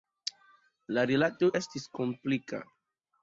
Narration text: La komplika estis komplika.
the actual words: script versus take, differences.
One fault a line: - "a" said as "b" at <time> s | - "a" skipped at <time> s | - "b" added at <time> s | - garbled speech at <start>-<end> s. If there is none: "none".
- "komplika" said as "rilato" at 1.1 s